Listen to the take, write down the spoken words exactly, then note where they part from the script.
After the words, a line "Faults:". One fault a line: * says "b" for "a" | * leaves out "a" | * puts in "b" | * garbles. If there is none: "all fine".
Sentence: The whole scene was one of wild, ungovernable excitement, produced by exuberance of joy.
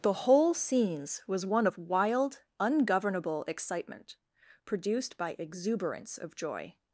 The whole scenes was one of wild, ungovernable excitement, produced by exuberance of joy.
Faults:
* says "scenes" for "scene"